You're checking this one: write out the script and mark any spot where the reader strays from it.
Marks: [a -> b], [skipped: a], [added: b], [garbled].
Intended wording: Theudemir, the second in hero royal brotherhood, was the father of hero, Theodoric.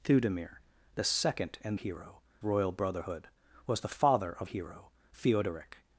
Theudemir, the second in hero royal brotherhood, was the father of hero, Theodoric.